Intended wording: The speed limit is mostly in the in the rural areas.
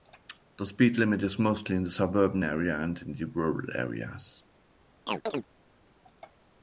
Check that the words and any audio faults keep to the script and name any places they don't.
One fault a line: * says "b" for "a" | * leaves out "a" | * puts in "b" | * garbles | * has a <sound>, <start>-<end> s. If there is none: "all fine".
* puts in "suburban area and"
* has a chirp, 5.1-5.5 s